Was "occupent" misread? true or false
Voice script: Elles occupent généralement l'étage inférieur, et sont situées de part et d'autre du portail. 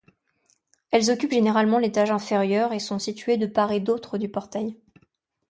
false